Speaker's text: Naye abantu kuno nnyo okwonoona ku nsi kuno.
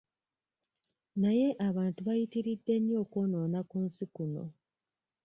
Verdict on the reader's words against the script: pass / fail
fail